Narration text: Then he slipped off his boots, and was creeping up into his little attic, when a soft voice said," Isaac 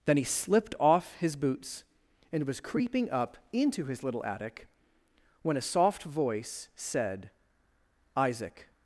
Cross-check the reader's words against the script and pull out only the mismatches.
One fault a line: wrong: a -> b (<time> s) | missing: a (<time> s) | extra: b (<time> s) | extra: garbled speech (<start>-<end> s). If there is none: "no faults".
no faults